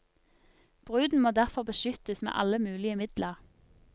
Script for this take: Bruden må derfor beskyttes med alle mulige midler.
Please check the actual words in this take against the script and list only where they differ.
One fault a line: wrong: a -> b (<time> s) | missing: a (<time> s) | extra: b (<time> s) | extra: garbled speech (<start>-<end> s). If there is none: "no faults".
no faults